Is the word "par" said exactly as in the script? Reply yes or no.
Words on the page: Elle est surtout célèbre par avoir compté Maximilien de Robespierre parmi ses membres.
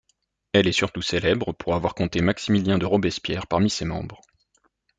no